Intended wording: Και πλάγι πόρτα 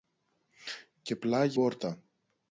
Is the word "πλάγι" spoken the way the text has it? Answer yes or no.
yes